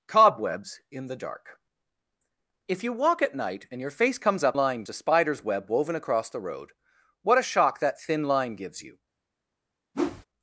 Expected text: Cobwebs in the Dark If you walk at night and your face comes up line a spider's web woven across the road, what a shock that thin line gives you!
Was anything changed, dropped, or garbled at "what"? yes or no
no